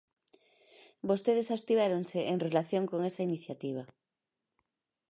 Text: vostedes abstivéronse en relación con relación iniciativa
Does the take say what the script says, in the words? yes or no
no